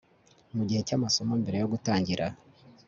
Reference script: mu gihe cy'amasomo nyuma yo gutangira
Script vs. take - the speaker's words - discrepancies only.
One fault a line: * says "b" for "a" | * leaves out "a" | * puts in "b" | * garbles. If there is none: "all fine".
* says "mbere" for "nyuma"